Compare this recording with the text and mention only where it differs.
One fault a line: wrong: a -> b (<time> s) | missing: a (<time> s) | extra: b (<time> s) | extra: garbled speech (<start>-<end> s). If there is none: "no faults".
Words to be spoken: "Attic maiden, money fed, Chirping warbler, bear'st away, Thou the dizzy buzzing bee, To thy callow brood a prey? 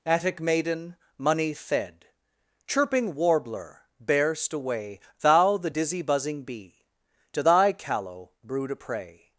no faults